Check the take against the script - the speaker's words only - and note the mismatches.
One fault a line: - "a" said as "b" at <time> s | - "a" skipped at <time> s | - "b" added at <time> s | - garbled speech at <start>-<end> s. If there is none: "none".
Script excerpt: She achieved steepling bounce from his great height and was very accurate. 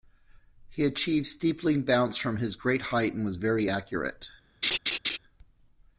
- "She" said as "He" at 0.7 s